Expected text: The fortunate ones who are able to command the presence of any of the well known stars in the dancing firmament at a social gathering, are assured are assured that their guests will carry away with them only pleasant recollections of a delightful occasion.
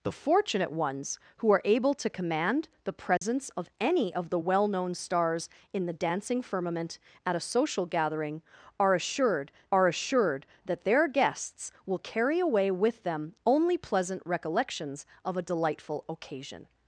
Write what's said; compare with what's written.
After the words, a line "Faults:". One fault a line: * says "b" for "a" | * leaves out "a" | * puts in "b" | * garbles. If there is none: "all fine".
The fortunate ones who are able to command the presence of any of the well known stars in the dancing firmament at a social gathering, are assured are assured that their guests will carry away with them only pleasant recollections of a delightful occasion.
Faults:
all fine